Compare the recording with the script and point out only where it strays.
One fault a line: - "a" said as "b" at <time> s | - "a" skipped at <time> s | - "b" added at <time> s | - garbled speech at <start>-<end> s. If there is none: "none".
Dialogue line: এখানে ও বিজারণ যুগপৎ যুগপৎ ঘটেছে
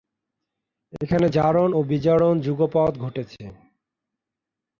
- "জারণ" added at 1.3 s
- "যুগপৎ" skipped at 2.9 s